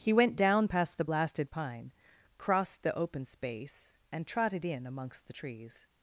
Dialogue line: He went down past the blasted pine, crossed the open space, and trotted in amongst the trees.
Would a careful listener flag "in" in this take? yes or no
no